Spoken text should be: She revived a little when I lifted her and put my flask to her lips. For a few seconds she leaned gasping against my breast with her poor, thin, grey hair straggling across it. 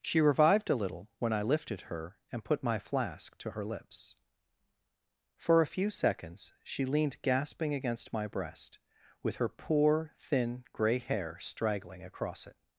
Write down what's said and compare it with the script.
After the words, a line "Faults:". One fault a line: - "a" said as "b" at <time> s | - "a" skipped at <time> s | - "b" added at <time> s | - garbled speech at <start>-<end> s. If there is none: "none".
She revived a little when I lifted her and put my flask to her lips. For a few seconds she leaned gasping against my breast with her poor, thin, grey hair straggling across it.
Faults:
none